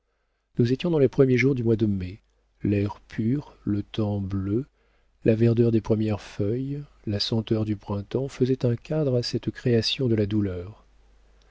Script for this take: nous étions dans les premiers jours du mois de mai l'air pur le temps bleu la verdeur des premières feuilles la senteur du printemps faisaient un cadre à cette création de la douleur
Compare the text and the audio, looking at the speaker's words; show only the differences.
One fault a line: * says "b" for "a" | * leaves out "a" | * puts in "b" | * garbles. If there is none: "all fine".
all fine